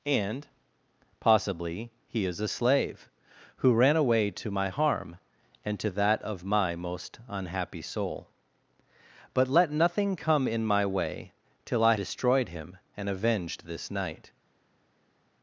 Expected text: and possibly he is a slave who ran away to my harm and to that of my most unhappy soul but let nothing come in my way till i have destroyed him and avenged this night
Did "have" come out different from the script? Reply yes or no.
yes